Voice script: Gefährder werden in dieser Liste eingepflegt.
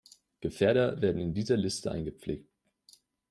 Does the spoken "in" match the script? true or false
true